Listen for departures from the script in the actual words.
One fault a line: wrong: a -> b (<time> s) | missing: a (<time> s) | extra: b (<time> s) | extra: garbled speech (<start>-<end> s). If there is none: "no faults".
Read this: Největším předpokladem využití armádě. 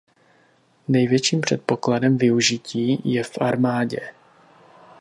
extra: je v (3.0 s)